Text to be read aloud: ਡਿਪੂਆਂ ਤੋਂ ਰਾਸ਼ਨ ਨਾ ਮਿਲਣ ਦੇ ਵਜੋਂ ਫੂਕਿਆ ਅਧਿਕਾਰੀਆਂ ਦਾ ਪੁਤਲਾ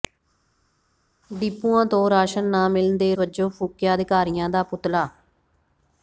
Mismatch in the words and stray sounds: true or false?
false